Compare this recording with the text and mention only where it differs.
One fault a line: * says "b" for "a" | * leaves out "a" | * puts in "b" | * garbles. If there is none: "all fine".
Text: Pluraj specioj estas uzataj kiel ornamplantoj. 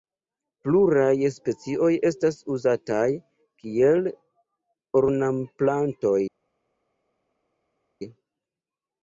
all fine